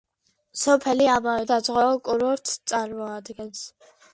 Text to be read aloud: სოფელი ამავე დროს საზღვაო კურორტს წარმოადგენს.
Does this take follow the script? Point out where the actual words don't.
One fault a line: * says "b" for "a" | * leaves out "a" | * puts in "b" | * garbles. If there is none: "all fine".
* leaves out "დროს"